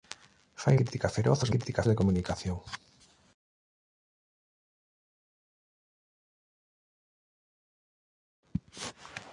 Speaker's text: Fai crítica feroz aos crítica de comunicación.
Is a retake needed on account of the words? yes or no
no